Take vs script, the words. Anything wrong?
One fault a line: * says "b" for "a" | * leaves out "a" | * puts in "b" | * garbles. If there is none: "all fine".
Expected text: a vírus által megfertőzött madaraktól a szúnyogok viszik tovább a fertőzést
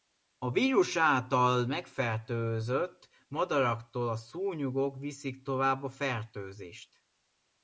all fine